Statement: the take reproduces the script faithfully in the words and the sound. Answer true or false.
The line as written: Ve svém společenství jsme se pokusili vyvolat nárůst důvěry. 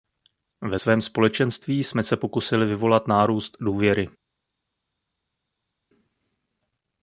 true